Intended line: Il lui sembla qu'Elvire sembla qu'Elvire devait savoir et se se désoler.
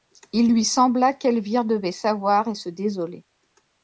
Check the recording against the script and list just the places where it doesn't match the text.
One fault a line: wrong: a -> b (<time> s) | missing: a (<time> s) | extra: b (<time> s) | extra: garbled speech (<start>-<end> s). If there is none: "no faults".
missing: sembla qu'Elvire (1.7 s)
missing: se (2.7 s)